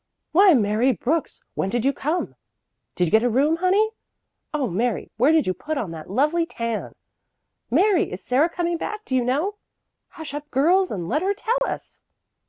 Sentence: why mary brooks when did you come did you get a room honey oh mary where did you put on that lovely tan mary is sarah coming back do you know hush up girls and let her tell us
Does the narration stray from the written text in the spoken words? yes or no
no